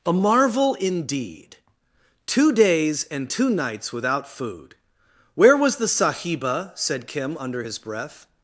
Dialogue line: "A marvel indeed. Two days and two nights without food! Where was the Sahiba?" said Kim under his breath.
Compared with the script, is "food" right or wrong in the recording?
right